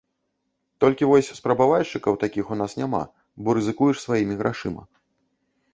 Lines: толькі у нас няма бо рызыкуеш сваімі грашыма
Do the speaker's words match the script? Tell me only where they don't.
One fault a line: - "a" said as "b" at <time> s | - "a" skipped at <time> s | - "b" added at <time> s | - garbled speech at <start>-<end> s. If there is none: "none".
- "вось спрабавальшчыкаў такіх" added at 1.1 s